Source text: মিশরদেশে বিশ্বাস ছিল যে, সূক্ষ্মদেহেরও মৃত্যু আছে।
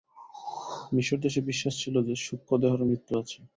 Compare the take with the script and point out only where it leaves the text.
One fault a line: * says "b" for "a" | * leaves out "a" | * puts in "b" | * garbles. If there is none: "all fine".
all fine